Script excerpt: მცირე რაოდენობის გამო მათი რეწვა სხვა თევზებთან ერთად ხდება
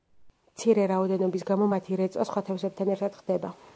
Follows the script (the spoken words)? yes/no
yes